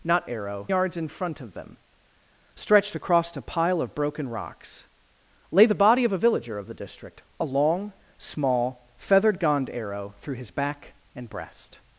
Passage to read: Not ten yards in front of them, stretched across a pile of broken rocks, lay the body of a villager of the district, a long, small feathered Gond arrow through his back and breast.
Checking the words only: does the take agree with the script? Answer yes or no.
no